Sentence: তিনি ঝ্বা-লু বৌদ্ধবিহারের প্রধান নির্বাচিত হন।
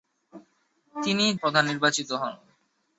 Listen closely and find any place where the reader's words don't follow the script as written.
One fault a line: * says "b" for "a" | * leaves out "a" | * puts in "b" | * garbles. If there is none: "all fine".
* leaves out "ঝ্বা-লু বৌদ্ধবিহারের"